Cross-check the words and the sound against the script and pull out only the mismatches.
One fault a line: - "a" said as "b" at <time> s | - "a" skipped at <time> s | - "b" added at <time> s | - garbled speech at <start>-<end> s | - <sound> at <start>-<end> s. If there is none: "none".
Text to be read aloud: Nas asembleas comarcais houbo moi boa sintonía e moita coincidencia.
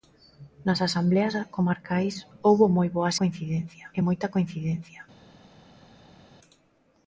- "sintonía" said as "coincidencia" at 3.2 s